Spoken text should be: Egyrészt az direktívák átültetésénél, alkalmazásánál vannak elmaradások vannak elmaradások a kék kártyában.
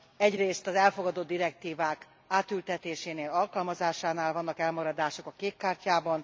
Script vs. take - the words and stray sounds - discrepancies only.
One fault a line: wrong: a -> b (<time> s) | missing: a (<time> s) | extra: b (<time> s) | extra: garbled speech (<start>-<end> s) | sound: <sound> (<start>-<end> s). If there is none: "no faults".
extra: elfogadott (0.8 s)
missing: vannak elmaradások (5.3 s)